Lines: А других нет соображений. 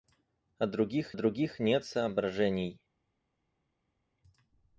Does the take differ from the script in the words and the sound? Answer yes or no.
yes